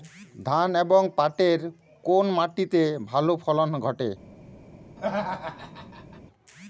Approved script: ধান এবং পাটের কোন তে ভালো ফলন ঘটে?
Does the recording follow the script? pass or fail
fail